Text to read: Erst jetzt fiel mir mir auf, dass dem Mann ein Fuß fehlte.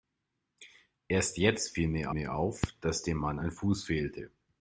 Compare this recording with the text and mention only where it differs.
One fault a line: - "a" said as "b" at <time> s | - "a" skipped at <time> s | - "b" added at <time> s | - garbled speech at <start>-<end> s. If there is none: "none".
none